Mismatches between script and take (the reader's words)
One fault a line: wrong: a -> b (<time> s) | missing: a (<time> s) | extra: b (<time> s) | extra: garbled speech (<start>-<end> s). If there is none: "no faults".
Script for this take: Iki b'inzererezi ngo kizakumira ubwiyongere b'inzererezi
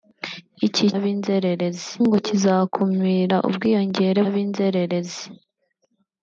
no faults